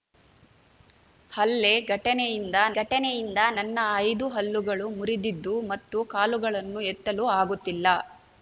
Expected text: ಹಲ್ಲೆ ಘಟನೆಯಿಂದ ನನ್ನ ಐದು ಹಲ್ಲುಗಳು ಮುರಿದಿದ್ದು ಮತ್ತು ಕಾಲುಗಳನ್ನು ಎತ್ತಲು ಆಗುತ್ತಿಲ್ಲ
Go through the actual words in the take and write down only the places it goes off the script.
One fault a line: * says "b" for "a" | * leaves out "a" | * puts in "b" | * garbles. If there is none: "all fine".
* puts in "ಘಟನೆಯಿಂದ"